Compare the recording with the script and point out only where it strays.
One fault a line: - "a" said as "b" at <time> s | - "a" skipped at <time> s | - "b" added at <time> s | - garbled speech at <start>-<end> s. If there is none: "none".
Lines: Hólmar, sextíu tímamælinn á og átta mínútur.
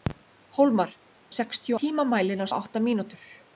none